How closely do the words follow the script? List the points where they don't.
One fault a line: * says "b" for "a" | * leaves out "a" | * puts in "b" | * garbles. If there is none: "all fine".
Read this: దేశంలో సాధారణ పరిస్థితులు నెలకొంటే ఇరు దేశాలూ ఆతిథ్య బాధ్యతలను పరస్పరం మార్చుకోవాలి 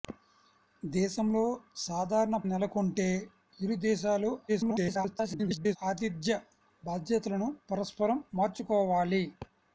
* leaves out "పరిస్థితులు"
* garbles